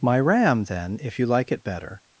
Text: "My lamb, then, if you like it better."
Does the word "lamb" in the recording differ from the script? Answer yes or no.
yes